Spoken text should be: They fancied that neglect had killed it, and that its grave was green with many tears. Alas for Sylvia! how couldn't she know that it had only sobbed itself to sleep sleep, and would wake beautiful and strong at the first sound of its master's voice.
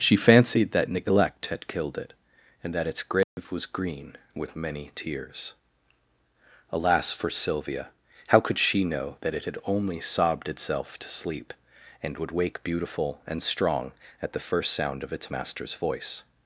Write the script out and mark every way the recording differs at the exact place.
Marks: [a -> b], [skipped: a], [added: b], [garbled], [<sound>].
[They -> She] fancied that neglect had killed it, and that its grave [dropout] was green with many tears. Alas for Sylvia! how [couldn't -> could] she know that it had only sobbed itself to sleep [skipped: sleep,] and would wake beautiful and strong at the first sound of its master's voice.